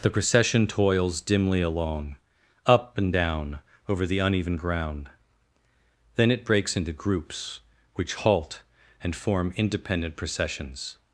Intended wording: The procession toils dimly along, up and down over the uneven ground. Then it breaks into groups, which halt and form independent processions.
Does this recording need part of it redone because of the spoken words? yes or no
no